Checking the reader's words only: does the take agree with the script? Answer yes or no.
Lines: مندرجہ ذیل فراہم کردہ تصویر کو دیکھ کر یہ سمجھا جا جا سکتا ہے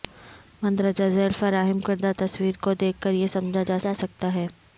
yes